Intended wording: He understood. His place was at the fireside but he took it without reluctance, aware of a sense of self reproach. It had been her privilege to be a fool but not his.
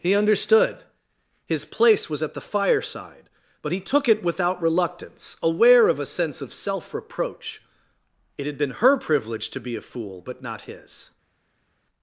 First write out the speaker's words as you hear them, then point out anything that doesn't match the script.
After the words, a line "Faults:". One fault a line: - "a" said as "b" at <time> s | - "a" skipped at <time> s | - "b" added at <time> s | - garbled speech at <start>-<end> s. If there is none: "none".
He understood. His place was at the fireside but he took it without reluctance, aware of a sense of self reproach. It had been her privilege to be a fool but not his.
Faults:
none